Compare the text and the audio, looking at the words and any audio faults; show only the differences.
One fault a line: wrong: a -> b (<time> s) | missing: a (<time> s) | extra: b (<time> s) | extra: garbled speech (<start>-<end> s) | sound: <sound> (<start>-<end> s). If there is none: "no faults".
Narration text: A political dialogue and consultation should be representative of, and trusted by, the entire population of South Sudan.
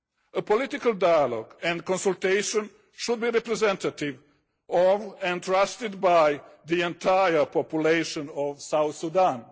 no faults